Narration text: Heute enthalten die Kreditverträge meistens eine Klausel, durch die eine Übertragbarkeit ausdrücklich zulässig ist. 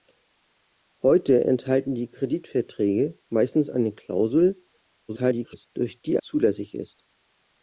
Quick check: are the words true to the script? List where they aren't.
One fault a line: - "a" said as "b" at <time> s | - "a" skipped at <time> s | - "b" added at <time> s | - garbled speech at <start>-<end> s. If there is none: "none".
- garbled speech at 5.1-5.7 s
- "eine Übertragbarkeit ausdrücklich" skipped at 6.2 s